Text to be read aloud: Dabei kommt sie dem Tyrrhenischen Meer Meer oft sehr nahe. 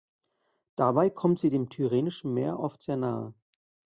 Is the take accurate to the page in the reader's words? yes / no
no